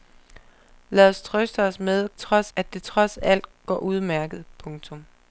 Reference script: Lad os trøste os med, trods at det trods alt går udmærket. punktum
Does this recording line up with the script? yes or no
yes